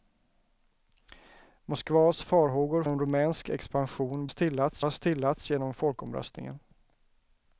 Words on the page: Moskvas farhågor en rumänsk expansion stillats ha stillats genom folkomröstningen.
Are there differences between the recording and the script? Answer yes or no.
no